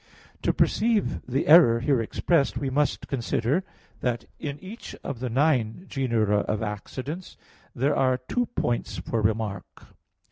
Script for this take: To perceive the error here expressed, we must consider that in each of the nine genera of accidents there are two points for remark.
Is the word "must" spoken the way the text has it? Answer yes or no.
yes